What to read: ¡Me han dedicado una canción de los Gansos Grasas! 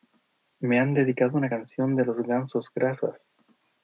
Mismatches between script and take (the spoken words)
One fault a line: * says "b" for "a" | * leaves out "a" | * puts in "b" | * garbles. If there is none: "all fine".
all fine